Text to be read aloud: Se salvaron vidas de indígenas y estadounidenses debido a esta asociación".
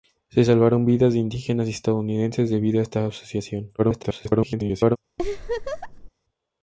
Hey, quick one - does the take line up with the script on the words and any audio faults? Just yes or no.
no